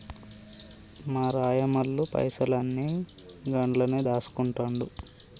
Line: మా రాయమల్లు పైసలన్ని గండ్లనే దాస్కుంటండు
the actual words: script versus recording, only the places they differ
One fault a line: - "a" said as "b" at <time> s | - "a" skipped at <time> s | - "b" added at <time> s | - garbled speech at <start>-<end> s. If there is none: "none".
none